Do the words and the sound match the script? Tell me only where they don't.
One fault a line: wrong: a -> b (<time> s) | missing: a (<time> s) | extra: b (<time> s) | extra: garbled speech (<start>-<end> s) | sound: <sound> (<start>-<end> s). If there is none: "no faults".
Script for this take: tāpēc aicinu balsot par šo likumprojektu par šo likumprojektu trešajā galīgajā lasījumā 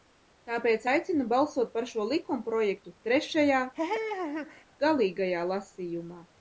missing: par šo likumprojektu (2.9 s)
sound: laugh (3.7-4.6 s)